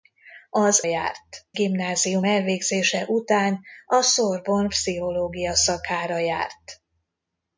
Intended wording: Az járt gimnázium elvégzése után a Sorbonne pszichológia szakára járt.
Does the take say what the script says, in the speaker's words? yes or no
yes